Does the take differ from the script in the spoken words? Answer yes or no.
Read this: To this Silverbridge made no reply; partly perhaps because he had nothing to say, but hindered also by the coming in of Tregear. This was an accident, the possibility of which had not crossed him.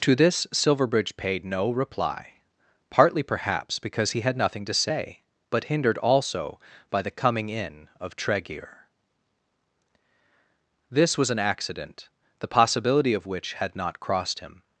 yes